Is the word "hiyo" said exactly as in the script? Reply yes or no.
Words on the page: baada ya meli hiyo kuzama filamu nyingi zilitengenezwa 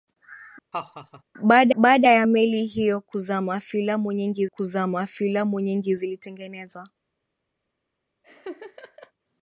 yes